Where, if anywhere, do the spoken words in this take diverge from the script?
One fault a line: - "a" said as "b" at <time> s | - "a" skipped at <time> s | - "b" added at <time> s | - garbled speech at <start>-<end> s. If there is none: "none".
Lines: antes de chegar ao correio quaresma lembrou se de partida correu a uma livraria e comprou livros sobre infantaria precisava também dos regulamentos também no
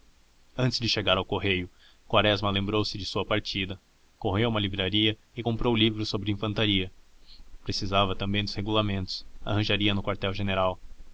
- "sua" added at 3.0 s
- "também" said as "arranjaria" at 9.4 s